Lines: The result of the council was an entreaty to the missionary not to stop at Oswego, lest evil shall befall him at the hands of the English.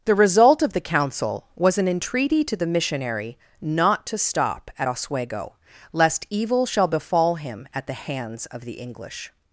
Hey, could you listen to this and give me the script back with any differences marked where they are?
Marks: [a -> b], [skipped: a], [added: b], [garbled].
The result of the council was an entreaty to the missionary not to stop at Oswego, lest evil shall befall him at the hands of the English.